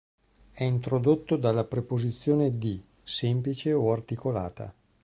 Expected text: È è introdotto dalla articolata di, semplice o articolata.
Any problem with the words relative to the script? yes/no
yes